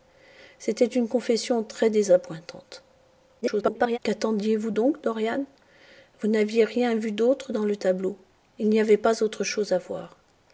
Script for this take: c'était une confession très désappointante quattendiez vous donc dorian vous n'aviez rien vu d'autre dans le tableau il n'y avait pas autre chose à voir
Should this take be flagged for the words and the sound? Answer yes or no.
yes